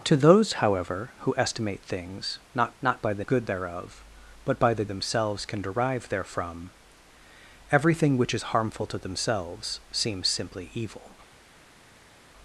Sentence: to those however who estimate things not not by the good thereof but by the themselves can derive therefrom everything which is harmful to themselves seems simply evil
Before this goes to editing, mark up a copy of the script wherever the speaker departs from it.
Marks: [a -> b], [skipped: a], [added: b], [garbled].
to those however who estimate things not not by the good thereof but by the themselves can derive therefrom everything which is harmful to themselves seems simply evil